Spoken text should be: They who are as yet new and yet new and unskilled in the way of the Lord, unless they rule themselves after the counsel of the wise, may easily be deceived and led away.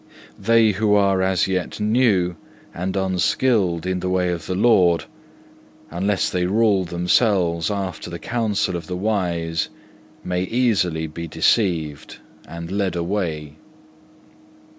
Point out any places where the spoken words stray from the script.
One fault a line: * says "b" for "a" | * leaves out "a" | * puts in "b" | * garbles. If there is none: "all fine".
* leaves out "yet new and"